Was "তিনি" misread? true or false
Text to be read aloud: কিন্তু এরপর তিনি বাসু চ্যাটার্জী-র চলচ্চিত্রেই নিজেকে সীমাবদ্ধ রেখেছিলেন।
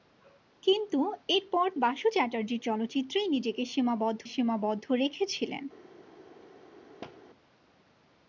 true